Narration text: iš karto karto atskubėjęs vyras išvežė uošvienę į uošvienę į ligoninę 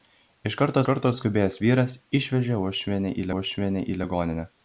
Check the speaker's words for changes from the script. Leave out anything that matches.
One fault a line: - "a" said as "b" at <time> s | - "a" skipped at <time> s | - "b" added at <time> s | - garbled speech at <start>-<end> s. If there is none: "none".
none